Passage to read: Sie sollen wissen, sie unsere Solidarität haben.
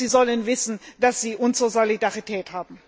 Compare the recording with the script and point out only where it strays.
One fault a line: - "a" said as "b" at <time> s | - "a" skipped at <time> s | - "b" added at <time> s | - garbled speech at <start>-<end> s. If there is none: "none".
- "dass" added at 1.0 s